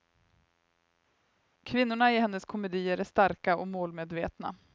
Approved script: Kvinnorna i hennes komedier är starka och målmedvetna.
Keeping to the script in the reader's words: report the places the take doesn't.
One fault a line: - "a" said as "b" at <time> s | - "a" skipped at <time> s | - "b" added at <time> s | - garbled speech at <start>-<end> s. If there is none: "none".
none